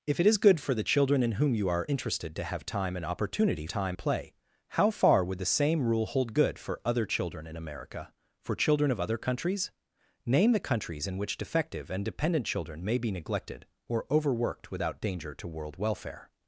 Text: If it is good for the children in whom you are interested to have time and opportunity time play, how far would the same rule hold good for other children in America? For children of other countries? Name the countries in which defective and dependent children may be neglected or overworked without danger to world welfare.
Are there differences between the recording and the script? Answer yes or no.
no